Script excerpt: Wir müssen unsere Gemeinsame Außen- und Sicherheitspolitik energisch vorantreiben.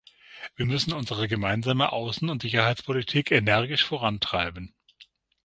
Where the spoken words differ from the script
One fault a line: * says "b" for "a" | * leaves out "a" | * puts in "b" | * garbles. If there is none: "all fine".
all fine